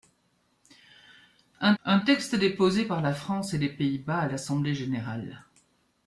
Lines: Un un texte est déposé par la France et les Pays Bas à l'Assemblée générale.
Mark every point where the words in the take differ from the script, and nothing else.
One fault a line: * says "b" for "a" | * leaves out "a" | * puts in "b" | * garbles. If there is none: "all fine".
all fine